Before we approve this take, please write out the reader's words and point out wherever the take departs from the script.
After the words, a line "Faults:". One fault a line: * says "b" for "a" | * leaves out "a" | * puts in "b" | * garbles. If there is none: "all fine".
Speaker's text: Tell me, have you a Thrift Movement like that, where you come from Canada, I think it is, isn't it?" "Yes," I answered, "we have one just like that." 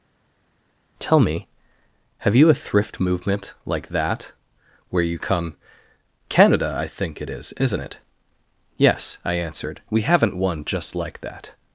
Tell me, have you a Thrift Movement like that, where you come Canada, I think it is, isn't it?" "Yes," I answered, "we haven't one just like that."
Faults:
* leaves out "from"
* says "haven't" for "have"